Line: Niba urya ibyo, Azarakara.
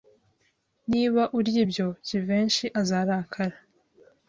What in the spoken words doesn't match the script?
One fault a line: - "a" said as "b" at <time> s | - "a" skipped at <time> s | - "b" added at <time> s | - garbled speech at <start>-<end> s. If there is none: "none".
- "Jivency" added at 2.1 s